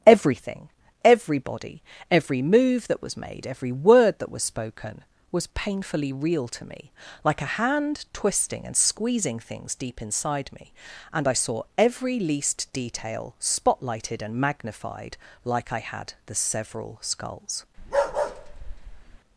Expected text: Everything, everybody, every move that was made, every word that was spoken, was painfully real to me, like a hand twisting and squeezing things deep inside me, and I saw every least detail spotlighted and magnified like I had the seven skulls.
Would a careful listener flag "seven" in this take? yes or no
yes